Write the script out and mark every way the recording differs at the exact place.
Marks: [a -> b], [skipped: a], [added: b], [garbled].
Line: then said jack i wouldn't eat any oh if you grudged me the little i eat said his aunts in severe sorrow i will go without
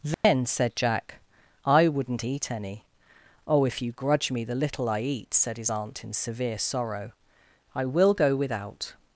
then said jack i wouldn't eat any oh if you [grudged -> grudge] me the little i eat said his [aunts -> aunt] in severe sorrow i will go without